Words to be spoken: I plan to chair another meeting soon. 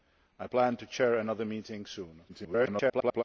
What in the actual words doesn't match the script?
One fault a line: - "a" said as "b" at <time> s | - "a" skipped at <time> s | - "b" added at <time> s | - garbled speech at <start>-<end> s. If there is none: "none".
- garbled speech at 2.3-3.2 s